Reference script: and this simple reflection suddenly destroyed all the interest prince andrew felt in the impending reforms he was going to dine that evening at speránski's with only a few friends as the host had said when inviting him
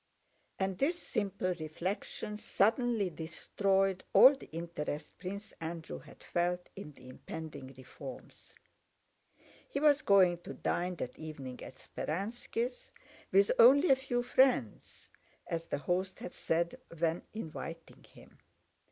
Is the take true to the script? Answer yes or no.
no